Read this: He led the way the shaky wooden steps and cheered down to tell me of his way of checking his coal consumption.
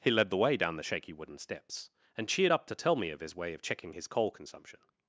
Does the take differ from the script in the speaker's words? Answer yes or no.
yes